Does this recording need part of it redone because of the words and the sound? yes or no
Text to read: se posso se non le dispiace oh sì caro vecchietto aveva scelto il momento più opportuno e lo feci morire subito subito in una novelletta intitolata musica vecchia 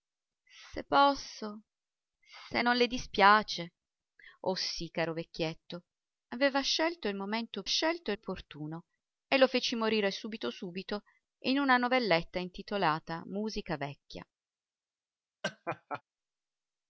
yes